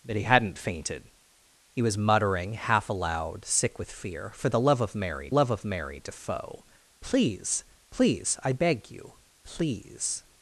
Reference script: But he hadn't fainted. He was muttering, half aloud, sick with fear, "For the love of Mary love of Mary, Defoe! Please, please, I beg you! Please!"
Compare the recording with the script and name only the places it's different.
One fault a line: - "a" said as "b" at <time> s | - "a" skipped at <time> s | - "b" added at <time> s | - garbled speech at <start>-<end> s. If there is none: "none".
none